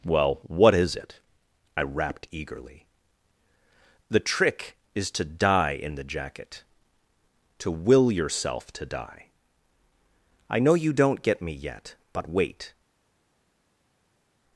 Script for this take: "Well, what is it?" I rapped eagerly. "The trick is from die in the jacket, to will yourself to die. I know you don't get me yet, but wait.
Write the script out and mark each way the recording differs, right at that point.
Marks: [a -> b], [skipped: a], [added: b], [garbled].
"Well, what is it?" I rapped eagerly. "The trick is [from -> to] die in the jacket, to will yourself to die. I know you don't get me yet, but wait.